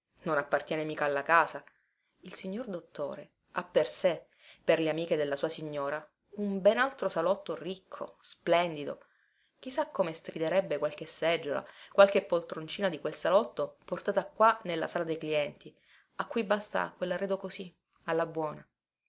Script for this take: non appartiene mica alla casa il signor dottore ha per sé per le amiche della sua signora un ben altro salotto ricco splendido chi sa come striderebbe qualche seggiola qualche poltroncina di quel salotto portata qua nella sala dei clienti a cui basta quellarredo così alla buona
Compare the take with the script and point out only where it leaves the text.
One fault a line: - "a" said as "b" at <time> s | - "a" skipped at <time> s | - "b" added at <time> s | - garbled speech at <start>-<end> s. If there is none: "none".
none